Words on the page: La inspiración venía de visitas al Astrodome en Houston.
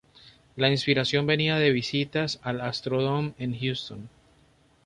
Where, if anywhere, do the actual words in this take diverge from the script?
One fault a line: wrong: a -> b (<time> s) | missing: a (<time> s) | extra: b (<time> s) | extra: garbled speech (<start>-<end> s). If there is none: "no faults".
no faults